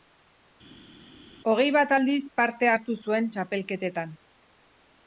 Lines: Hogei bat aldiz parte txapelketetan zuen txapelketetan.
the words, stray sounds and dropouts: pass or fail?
fail